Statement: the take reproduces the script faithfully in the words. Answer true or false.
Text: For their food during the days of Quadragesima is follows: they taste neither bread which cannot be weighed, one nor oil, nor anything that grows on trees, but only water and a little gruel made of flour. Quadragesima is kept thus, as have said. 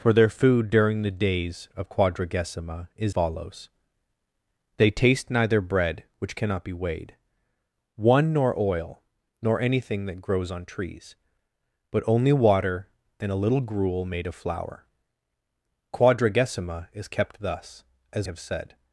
true